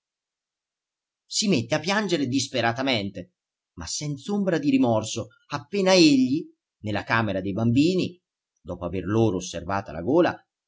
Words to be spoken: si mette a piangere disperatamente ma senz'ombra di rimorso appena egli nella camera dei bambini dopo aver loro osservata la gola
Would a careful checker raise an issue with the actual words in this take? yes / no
no